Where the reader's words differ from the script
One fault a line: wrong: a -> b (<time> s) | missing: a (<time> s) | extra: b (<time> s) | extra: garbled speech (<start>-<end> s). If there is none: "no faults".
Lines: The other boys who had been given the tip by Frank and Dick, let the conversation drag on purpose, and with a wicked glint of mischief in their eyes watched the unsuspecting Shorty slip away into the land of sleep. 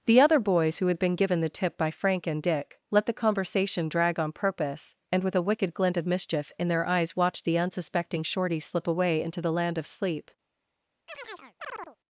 no faults